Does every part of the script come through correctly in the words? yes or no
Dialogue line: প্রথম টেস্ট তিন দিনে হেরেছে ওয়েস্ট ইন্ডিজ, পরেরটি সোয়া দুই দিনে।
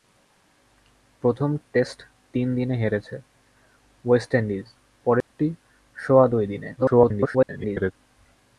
no